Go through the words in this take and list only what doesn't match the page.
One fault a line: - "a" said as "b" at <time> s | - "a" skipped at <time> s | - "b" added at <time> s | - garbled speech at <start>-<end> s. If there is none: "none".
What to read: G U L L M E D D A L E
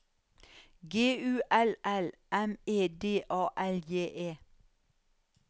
- "D" skipped at 3.2 s
- "J" added at 3.8 s